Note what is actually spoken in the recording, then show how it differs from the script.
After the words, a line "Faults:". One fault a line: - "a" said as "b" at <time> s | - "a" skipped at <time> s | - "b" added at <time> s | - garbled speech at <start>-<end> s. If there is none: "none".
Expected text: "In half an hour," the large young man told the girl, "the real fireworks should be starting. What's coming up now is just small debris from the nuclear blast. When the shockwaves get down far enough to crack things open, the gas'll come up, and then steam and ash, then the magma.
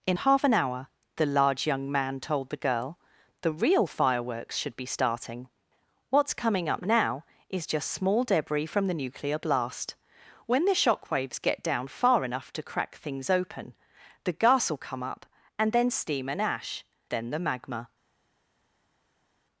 "In half an hour," the large young man told the girl, "the real fireworks should be starting. What's coming up now is just small debris from the nuclear blast. When the shockwaves get down far enough to crack things open, the gas'll come up, and then steam and ash, then the magma.
Faults:
none